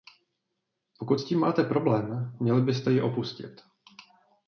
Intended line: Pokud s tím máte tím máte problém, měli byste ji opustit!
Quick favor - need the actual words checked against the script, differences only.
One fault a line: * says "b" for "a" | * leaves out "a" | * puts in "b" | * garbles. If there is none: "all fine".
* leaves out "tím máte"